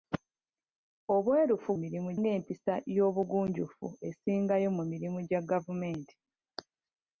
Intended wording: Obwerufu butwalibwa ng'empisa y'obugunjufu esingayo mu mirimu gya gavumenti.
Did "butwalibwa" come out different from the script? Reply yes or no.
yes